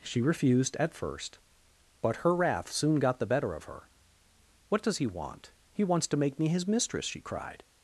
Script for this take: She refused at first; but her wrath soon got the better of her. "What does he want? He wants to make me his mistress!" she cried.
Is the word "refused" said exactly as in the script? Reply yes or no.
yes